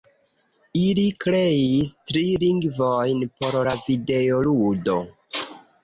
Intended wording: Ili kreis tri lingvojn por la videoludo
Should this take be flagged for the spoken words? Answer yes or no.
no